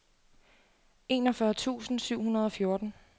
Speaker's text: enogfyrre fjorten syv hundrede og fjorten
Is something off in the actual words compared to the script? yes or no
yes